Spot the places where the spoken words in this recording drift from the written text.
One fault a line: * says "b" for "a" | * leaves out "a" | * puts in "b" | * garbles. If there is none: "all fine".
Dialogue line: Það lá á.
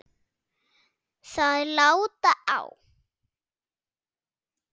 all fine